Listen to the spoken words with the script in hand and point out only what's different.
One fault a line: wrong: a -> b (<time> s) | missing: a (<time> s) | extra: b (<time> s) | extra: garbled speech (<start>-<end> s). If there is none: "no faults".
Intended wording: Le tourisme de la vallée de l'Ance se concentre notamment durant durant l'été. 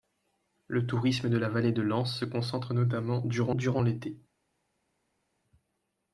no faults